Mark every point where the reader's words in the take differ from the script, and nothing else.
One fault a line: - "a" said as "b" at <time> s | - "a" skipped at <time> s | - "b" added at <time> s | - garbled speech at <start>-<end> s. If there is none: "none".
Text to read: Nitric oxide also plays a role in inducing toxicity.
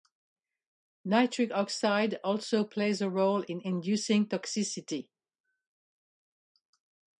none